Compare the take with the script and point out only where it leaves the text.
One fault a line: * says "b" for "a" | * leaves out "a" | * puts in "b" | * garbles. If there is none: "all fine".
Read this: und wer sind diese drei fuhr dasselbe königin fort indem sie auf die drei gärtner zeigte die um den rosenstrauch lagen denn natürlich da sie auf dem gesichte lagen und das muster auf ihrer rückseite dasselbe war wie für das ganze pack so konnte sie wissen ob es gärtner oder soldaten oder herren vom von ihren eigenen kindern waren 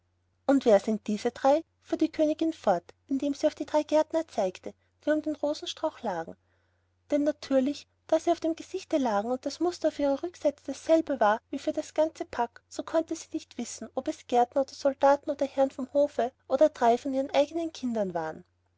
* says "die" for "dasselbe"
* puts in "nicht"
* puts in "hofe oder drei"